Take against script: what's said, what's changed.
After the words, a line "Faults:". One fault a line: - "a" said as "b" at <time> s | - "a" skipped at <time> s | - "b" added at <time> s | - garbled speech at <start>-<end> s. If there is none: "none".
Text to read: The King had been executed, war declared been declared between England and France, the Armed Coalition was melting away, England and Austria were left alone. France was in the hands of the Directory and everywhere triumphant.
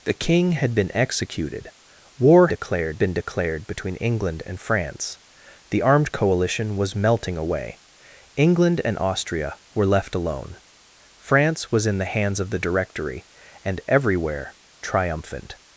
The King had been executed, war declared been declared between England and France, the Armed Coalition was melting away, England and Austria were left alone. France was in the hands of the Directory and everywhere triumphant.
Faults:
none